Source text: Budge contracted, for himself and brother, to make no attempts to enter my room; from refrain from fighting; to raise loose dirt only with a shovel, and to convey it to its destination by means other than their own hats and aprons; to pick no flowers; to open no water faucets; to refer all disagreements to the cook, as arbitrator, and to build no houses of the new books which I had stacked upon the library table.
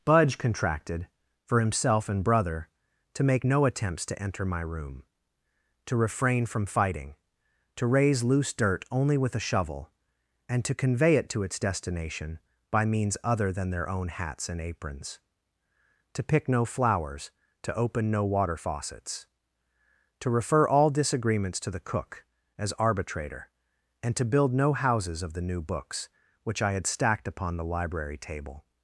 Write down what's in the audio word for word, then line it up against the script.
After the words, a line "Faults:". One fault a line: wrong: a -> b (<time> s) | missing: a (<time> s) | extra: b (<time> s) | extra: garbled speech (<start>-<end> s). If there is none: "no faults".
Budge contracted, for himself and brother, to make no attempts to enter my room; to refrain from fighting; to raise loose dirt only with a shovel, and to convey it to its destination by means other than their own hats and aprons; to pick no flowers; to open no water faucets; to refer all disagreements to the cook, as arbitrator, and to build no houses of the new books which I had stacked upon the library table.
Faults:
wrong: from -> to (5.9 s)